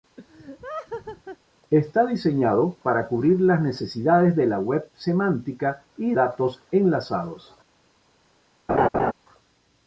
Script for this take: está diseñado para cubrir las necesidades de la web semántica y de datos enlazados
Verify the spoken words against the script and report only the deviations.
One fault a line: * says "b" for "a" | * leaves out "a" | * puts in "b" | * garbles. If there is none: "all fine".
* leaves out "de"